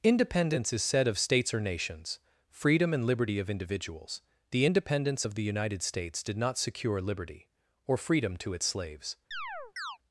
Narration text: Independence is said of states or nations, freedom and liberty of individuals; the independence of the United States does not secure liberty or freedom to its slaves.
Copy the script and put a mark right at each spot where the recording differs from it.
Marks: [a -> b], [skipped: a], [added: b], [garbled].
Independence is said of states or nations, freedom and liberty of individuals; the independence of the United States [does -> did] not secure liberty or freedom to its slaves.